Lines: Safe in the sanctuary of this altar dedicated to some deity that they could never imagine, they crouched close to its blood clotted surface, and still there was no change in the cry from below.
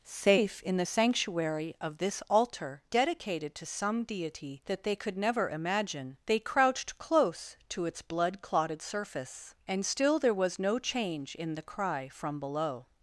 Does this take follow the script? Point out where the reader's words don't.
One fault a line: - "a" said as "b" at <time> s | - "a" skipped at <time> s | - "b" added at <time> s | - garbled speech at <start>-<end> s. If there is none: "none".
none